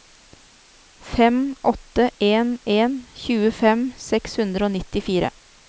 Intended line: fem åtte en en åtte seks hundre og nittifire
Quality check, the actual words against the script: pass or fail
fail